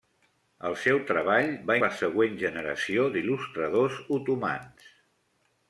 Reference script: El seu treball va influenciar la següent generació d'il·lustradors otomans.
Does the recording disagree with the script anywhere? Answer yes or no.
yes